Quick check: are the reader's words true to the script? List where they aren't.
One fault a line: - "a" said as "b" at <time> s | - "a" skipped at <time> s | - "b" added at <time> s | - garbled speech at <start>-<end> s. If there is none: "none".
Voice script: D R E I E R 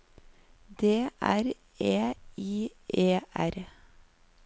none